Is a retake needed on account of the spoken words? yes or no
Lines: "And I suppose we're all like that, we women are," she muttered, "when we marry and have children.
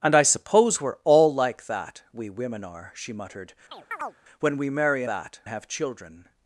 yes